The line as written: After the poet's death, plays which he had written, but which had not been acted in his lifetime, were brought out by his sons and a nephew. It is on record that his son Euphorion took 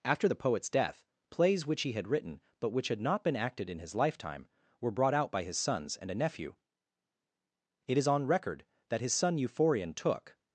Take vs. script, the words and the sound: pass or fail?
pass